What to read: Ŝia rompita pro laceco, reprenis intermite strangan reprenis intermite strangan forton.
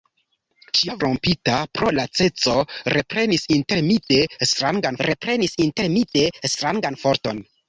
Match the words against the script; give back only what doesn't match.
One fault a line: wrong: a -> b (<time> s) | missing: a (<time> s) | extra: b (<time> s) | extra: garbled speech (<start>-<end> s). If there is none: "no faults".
no faults